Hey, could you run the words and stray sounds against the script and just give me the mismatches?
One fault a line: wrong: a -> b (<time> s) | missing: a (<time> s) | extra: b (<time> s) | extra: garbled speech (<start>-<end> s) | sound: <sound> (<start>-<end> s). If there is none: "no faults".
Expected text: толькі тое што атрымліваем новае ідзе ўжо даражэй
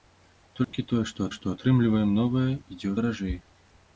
sound: dropout (0.6-0.7 s)
extra: што (1.4 s)
missing: ўжо (2.9 s)